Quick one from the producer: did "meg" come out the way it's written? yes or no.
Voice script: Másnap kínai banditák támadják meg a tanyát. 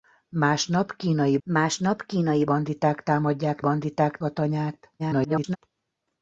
no